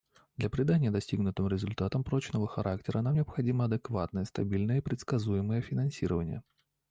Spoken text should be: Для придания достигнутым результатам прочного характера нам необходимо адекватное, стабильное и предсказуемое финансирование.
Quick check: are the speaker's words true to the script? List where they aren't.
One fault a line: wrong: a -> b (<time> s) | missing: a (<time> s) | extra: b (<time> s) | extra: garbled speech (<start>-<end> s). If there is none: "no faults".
no faults